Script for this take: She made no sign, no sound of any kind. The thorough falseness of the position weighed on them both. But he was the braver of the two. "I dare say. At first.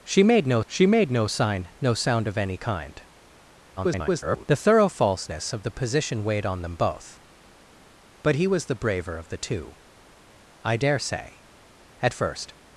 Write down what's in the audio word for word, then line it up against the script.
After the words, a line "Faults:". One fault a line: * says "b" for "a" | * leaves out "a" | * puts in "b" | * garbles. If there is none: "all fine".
She made no she made no sign, no sound of any kind. [garbled] The thorough falseness of the position weighed on them both. But he was the braver of the two. "I dare say. At first.
Faults:
* puts in "she made no"
* garbles